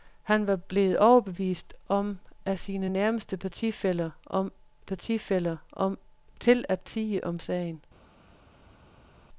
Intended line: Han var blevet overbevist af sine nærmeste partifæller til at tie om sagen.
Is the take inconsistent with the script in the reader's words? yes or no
yes